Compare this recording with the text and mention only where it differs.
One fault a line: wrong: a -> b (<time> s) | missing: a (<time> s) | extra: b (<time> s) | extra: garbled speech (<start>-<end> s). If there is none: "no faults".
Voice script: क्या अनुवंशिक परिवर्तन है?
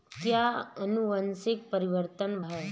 no faults